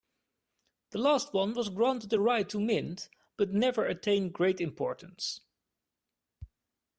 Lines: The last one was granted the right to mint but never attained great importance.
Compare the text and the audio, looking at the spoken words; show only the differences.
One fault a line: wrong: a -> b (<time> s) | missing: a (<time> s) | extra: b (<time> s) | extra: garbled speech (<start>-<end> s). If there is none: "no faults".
no faults